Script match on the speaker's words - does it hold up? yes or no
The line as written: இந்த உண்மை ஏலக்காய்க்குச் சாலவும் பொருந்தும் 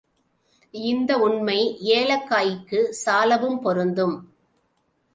yes